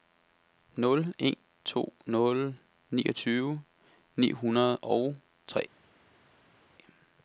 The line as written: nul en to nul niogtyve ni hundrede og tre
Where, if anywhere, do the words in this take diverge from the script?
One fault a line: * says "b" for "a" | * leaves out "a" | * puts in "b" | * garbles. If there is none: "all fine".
all fine